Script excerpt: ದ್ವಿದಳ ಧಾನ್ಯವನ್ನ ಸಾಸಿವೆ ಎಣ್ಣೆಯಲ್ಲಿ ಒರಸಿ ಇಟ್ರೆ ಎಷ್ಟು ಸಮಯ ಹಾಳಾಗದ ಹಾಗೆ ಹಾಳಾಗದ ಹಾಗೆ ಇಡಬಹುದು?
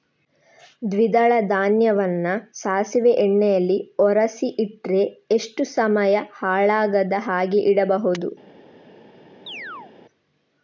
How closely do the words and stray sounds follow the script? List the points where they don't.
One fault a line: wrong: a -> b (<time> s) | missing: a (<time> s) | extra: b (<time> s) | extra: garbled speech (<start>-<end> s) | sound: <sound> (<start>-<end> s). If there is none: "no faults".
missing: ಹಾಳಾಗದ ಹಾಗೆ (7.6 s)
sound: chirp (9.5-9.9 s)